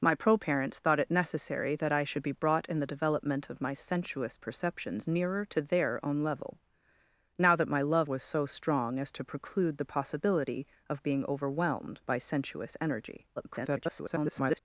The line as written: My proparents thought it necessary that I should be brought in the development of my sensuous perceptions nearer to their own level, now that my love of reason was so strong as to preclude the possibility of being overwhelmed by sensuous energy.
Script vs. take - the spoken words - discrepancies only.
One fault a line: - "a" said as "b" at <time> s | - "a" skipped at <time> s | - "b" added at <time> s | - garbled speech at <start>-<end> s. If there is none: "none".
- "of reason" skipped at 8.1 s
- garbled speech at 13.4-14.6 s